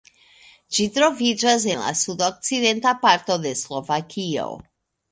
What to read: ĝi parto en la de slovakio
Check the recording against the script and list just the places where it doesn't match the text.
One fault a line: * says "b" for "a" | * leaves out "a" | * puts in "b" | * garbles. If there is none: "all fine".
* says "troviĝas" for "parto"
* puts in "sudokcidenta parto"